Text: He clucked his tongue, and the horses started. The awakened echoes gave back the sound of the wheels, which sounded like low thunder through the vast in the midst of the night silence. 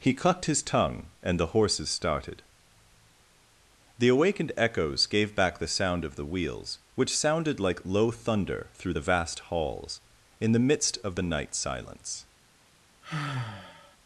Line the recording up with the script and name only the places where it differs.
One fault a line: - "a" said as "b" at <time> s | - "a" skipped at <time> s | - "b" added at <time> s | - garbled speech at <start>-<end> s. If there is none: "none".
- "halls" added at 9.4 s